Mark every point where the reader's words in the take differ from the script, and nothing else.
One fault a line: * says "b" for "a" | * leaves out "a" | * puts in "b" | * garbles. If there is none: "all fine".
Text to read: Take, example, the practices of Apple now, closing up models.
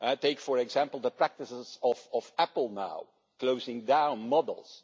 * puts in "for"
* says "down" for "up"